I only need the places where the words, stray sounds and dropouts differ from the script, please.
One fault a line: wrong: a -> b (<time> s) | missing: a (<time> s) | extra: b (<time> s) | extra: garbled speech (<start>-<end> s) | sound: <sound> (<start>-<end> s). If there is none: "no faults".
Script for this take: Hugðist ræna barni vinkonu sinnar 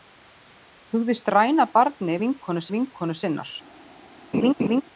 extra: vinkonu (2.7 s)
sound: laugh (4.3-4.8 s)